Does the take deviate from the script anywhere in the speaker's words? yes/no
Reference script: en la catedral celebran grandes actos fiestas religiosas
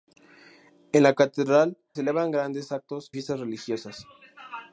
no